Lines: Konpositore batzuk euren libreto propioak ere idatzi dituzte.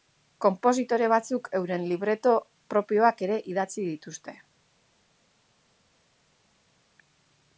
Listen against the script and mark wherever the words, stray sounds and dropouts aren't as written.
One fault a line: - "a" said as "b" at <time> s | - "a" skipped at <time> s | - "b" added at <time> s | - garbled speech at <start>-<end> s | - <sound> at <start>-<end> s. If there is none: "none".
none